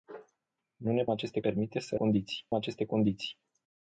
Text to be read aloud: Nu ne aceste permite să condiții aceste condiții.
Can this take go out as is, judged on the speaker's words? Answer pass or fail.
pass